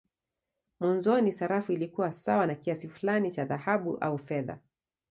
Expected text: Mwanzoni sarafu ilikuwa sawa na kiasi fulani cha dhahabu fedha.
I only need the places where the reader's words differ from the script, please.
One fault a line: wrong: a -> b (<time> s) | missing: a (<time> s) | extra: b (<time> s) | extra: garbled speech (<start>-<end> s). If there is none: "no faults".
extra: au (4.0 s)